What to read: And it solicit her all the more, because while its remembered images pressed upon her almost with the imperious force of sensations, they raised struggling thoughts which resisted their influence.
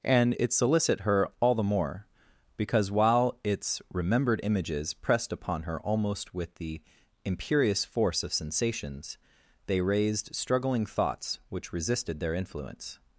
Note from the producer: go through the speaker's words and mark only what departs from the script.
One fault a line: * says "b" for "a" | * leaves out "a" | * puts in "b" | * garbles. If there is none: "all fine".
all fine